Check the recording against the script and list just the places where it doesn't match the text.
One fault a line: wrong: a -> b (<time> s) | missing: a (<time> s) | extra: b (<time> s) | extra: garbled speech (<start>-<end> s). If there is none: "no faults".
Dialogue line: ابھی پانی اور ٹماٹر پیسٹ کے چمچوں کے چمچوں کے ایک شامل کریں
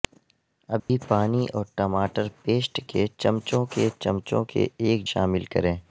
no faults